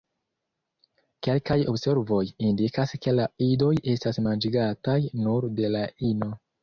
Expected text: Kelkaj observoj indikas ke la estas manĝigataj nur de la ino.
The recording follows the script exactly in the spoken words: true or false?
false